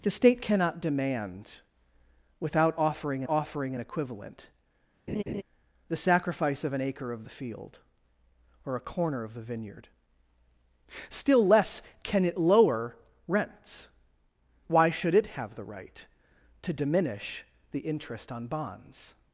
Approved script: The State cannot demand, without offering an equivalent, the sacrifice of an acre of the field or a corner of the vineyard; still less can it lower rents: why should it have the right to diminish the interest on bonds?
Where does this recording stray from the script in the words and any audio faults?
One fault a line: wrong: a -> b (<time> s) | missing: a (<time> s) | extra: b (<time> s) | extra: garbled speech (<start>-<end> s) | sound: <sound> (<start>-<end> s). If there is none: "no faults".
extra: offering (3.3 s)
sound: laugh (5.1-5.4 s)